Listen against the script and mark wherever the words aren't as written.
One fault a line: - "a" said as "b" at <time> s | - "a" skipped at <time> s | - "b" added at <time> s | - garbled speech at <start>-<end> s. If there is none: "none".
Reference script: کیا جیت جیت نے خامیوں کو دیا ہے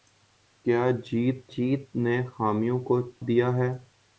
none